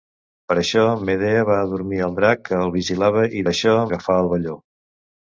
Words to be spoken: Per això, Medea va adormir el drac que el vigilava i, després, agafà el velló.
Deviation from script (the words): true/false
true